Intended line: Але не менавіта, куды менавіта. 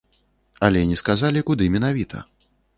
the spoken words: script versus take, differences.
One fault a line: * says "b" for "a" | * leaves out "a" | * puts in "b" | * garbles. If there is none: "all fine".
* says "сказалі" for "менавіта"